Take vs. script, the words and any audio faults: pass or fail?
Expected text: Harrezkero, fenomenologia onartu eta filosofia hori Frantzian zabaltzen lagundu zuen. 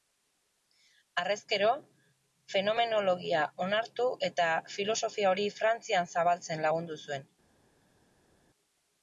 pass